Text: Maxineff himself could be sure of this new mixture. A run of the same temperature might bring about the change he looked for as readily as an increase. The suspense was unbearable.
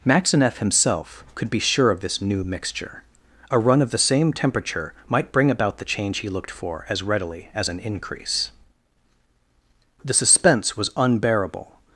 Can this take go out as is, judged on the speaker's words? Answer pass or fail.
pass